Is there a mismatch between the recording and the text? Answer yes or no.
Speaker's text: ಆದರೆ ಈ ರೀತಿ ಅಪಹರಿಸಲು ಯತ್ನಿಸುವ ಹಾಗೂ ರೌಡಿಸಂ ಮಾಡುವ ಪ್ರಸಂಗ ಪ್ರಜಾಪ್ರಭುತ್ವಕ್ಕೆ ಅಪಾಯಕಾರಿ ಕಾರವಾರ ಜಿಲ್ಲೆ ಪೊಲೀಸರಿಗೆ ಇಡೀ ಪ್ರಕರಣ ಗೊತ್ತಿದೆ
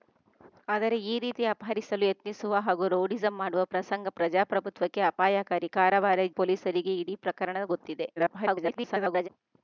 yes